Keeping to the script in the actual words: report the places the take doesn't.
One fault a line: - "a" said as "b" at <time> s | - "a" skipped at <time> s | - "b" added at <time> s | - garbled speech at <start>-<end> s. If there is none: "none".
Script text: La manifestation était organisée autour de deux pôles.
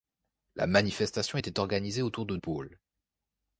- "deux" skipped at 2.4 s